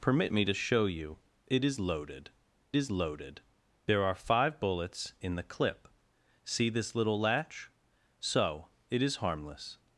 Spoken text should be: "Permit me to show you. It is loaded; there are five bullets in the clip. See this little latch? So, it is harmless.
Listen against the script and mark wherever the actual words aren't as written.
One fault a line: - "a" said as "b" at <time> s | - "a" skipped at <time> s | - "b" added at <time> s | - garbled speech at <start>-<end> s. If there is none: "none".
- "is loaded" added at 2.7 s